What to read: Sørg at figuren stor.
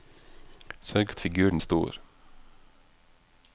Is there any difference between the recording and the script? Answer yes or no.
no